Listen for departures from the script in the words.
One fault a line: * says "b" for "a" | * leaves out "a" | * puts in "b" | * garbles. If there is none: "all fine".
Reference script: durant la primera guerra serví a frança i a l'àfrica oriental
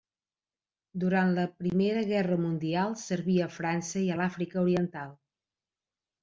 * puts in "mundial"